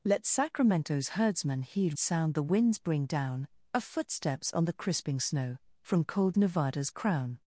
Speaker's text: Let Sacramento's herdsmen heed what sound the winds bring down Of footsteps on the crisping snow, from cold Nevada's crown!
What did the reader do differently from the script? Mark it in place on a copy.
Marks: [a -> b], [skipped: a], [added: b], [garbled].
Let Sacramento's herdsmen heed [skipped: what] sound the winds bring down Of footsteps on the crisping snow, from cold Nevada's crown!